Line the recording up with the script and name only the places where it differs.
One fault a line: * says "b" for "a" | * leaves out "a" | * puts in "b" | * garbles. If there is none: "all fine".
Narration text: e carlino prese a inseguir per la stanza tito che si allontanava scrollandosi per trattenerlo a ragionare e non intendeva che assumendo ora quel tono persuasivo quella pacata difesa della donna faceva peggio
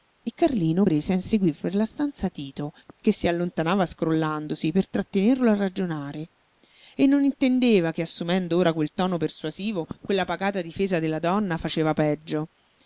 all fine